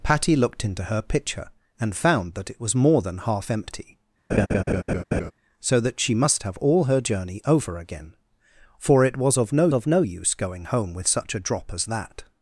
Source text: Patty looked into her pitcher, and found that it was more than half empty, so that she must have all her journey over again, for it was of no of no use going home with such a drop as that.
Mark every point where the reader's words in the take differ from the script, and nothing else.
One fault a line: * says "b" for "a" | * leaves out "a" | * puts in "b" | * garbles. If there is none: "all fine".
all fine